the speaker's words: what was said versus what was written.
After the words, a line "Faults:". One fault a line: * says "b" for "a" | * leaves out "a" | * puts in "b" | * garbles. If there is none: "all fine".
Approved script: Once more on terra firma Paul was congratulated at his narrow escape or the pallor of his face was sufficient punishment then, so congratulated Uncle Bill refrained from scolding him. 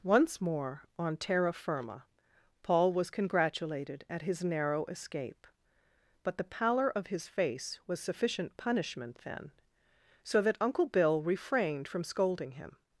Once more on terra firma Paul was congratulated at his narrow escape but the pallor of his face was sufficient punishment then, so that Uncle Bill refrained from scolding him.
Faults:
* says "but" for "or"
* says "that" for "congratulated"